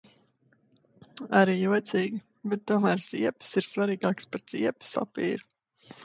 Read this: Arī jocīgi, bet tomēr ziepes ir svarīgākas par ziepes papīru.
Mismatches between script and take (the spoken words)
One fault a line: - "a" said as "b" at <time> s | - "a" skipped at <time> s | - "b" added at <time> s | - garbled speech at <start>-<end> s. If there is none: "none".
none